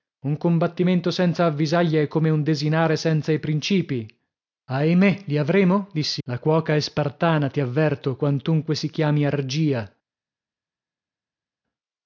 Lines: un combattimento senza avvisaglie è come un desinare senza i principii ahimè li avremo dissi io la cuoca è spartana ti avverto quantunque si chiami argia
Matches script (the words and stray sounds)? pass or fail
fail